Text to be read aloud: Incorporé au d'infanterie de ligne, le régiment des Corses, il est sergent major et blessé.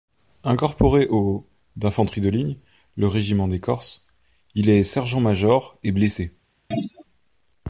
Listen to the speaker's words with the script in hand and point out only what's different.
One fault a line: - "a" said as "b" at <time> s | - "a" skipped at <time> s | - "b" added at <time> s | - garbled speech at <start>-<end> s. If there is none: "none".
none